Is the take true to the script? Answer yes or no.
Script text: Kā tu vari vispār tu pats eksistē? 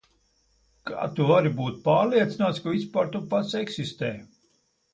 no